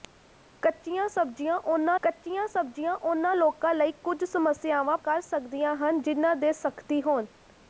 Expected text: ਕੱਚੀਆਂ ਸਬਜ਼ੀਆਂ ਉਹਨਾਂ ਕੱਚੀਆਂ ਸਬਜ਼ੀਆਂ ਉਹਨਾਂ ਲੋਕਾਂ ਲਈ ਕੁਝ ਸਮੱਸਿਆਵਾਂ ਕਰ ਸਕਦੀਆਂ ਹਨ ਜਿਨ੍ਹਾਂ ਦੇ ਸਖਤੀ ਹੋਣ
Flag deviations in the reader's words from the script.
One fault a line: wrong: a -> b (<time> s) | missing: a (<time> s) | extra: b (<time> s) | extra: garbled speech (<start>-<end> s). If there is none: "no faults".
no faults